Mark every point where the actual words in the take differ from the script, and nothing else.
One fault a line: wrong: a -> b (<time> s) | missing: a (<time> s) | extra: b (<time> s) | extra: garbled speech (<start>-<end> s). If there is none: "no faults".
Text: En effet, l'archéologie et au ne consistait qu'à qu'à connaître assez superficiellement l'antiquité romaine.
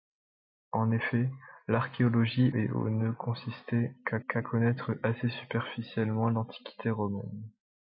no faults